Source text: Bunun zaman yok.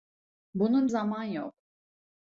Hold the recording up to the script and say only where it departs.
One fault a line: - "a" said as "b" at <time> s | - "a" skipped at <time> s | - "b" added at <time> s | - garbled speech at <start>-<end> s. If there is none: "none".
none